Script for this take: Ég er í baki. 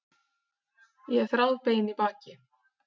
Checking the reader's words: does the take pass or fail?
fail